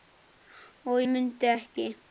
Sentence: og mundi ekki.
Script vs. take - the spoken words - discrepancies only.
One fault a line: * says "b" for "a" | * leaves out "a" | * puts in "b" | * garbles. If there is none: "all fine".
all fine